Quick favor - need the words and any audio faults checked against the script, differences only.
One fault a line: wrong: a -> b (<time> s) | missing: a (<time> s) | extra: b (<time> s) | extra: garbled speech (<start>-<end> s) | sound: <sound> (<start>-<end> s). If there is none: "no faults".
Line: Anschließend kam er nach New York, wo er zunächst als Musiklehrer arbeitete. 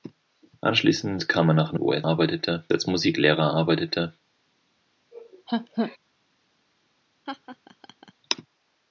missing: York (1.8 s)
wrong: zunächst -> arbeitete (2.0 s)
sound: laugh (5.1-6.0 s)
sound: laugh (7.3-8.1 s)